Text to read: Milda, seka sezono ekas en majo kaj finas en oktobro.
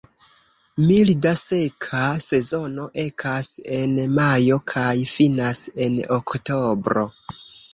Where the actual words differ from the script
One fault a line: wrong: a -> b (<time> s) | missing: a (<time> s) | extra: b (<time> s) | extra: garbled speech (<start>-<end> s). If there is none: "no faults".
no faults